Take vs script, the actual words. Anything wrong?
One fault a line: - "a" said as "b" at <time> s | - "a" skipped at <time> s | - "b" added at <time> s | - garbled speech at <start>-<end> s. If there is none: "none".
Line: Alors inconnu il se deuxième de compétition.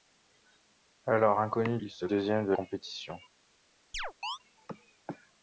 none